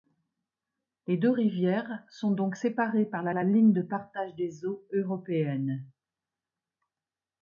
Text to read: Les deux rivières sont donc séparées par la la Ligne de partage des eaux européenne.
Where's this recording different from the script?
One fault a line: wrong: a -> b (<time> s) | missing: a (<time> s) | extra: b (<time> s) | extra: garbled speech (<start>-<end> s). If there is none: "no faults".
no faults